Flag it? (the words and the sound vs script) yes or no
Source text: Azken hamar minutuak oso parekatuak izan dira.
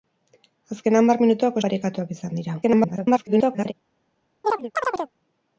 yes